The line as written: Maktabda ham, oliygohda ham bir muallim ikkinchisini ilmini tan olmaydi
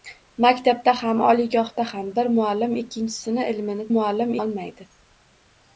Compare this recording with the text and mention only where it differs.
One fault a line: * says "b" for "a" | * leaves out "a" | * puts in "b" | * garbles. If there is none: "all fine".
* says "muallim" for "tan"